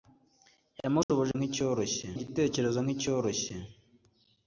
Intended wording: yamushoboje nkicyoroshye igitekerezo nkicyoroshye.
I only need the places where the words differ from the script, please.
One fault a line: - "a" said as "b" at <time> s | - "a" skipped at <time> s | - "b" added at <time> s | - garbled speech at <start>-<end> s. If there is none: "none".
none